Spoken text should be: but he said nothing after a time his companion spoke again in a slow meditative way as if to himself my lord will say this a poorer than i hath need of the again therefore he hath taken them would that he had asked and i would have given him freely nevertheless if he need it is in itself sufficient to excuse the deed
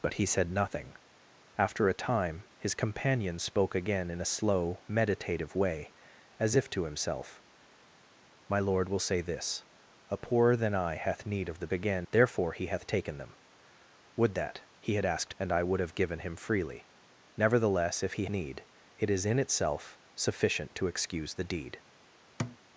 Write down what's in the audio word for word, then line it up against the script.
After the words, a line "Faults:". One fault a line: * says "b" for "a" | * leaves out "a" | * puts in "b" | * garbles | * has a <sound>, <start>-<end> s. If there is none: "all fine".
but he said nothing after a time his companion spoke again in a slow meditative way as if to himself my lord will say this a poorer than i hath need of the again therefore he hath taken them would that he had asked and i would have given him freely nevertheless if he need it is in itself sufficient to excuse the deed
Faults:
* has a thud, 22.4-22.6 s